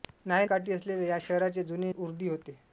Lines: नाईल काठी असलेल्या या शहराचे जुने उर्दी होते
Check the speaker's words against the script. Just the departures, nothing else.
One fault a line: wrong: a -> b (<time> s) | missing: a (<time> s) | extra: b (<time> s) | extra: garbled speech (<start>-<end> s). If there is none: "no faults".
no faults